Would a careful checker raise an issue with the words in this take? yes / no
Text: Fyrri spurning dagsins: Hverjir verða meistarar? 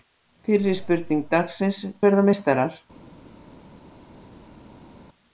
yes